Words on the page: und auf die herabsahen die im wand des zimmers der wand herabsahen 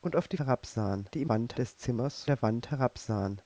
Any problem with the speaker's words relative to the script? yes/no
no